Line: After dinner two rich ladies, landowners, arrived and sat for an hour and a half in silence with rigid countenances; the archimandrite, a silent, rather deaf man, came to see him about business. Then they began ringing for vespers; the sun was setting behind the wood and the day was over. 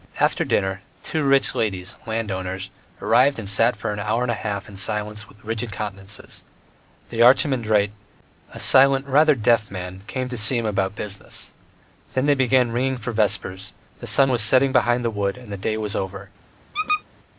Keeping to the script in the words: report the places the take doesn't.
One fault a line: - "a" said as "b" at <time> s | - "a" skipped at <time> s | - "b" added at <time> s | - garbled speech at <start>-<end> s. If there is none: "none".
none